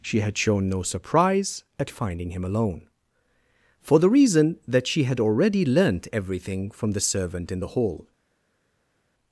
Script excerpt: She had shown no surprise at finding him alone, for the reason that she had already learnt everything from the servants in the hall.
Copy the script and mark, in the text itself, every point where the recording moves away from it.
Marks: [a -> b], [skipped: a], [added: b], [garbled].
She had shown no surprise at finding him alone, for the reason that she had already learnt everything from the [servants -> servant] in the hall.